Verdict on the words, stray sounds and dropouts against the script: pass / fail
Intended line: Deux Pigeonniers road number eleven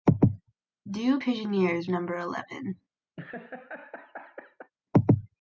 fail